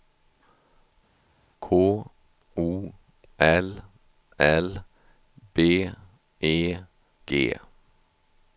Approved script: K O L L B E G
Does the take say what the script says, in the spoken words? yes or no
yes